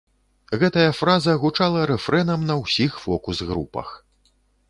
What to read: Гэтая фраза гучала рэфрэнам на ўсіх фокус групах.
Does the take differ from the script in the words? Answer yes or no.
no